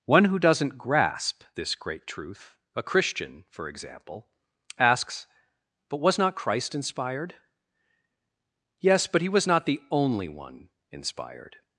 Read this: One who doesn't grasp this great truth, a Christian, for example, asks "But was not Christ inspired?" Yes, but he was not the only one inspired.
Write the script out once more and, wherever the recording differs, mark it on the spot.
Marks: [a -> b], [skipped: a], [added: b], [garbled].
One who doesn't grasp this great truth, a Christian, for example, asks "But was not Christ inspired?" Yes, but he was not the only one inspired.